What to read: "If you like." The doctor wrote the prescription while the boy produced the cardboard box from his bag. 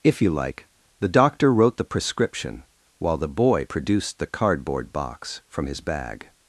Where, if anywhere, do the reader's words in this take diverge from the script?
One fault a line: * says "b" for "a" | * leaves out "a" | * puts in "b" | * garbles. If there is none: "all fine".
all fine